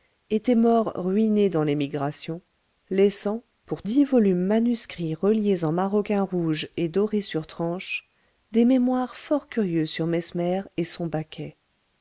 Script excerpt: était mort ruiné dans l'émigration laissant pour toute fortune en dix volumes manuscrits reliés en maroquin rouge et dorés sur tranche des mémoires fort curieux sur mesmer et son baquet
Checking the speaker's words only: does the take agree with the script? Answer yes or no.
no